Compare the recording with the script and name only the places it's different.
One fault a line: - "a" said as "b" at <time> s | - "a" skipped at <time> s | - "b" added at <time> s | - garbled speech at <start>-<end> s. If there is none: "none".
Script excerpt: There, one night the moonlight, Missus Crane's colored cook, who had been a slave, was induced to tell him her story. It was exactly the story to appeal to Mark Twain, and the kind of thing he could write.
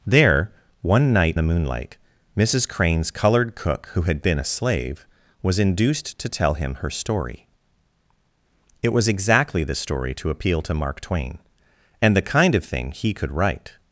none